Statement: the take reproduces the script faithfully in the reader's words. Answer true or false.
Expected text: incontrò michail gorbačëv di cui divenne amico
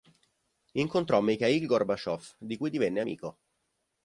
true